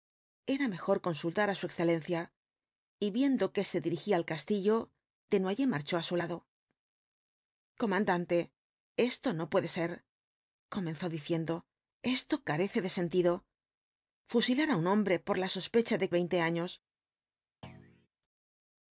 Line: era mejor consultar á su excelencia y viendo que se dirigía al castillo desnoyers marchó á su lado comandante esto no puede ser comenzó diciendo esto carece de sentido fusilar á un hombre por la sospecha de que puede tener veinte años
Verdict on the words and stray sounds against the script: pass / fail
fail